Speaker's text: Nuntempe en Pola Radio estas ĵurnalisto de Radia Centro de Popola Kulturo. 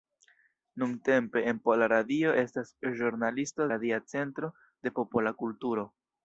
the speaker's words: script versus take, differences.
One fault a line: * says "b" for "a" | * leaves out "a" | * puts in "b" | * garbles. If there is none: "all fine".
* leaves out "de"